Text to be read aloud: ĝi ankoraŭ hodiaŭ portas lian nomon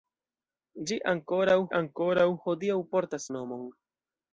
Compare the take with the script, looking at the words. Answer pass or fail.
fail